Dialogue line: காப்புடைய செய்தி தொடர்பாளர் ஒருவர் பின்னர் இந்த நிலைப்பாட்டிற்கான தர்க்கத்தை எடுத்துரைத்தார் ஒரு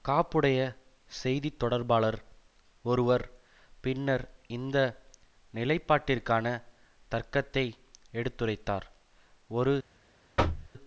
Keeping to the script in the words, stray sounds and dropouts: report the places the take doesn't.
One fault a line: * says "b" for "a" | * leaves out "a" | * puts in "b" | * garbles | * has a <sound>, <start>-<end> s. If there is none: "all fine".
* has a thud, 10.4-10.7 s